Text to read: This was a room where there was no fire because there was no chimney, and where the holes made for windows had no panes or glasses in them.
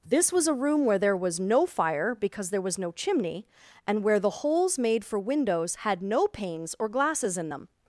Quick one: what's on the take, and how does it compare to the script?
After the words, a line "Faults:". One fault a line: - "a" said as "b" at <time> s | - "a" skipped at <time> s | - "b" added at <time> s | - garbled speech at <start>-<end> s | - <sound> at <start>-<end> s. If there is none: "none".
This was a room where there was no fire because there was no chimney, and where the holes made for windows had no panes or glasses in them.
Faults:
none